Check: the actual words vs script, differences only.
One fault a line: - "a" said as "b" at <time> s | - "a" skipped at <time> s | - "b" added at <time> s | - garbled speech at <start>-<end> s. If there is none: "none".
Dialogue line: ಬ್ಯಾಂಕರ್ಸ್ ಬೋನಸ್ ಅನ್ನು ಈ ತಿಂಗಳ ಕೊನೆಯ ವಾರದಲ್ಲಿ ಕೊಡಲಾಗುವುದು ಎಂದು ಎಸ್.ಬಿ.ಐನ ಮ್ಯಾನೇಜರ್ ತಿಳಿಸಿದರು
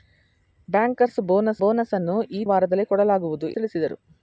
- "ಬೋನಸ್" added at 1.6 s
- "ತಿಂಗಳ ಕೊನೆಯ" skipped at 2.4 s
- "ಎಂದು ಎಸ್.ಬಿ.ಐನ ಮ್ಯಾನೇಜರ್" skipped at 3.5 s